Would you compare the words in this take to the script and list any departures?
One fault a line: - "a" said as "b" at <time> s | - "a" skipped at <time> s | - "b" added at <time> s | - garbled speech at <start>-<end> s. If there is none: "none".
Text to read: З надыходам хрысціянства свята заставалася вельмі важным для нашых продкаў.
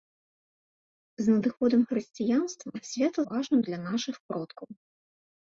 - "заставалася вельмі" skipped at 3.3 s